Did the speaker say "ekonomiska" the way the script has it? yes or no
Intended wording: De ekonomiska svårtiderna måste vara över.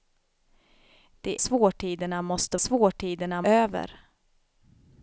no